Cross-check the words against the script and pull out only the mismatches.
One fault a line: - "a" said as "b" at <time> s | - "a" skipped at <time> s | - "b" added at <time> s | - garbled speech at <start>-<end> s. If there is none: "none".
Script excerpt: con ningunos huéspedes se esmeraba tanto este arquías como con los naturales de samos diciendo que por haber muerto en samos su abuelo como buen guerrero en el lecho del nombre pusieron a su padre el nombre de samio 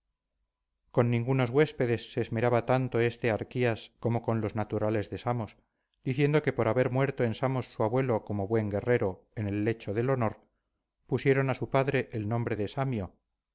- "nombre" said as "honor" at 10.1 s